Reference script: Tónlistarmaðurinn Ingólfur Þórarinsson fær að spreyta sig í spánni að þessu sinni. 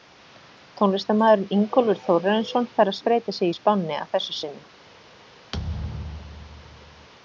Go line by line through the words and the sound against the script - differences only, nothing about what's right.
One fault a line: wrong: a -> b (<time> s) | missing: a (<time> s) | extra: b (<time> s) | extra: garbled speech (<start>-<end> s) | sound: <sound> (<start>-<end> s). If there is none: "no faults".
sound: thud (5.5-7.1 s)